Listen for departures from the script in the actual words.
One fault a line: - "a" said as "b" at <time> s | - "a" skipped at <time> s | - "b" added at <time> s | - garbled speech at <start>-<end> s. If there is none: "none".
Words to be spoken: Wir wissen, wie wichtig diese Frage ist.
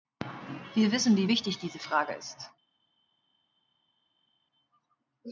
none